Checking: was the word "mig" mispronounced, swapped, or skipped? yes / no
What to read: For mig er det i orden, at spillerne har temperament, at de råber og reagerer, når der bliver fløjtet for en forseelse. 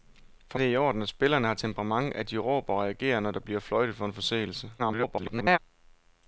yes